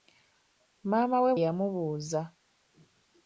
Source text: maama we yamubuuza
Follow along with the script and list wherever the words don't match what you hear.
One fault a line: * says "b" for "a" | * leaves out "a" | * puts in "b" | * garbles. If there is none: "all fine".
all fine